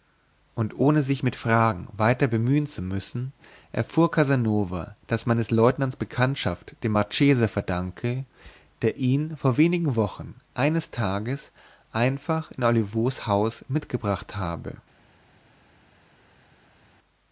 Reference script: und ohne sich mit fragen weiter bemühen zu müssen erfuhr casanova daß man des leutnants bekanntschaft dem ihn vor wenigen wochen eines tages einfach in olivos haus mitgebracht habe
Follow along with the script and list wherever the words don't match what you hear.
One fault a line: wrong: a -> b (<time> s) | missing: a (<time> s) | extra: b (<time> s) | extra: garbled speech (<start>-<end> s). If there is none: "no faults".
extra: marchese verdanke der (6.9 s)